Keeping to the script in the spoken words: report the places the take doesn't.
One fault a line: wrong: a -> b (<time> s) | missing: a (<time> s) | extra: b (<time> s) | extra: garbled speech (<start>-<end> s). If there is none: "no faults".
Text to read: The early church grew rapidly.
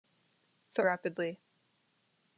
missing: early church grew (0.8 s)